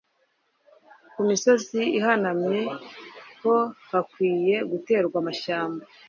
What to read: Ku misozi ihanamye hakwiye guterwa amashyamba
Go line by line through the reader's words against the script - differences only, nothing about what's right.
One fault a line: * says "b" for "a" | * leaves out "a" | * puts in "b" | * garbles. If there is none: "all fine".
* puts in "ho"